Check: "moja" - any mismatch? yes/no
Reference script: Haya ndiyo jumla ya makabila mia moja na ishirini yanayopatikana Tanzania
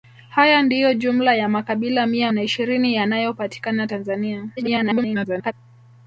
yes